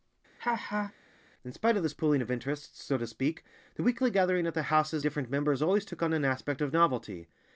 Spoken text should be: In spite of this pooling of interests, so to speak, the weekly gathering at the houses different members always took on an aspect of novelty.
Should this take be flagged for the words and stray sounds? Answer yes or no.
yes